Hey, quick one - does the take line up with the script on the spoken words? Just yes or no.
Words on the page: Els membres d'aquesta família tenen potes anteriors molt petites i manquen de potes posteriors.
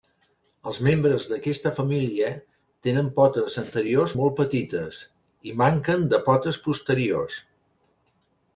yes